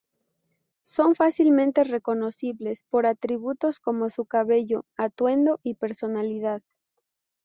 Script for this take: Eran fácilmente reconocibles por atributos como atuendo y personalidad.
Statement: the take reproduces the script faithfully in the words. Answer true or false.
false